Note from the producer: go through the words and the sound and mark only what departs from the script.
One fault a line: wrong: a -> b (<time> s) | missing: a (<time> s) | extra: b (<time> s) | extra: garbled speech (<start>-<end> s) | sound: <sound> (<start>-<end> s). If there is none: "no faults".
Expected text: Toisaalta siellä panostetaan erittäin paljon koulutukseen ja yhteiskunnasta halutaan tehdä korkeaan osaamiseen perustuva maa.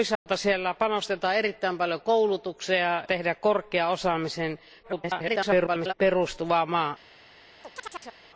sound: dropout (0.2-0.3 s)
missing: ja yhteiskunnasta halutaan (3.0 s)
extra: garbled speech (4.8-5.9 s)
sound: chirp (7.6-8.2 s)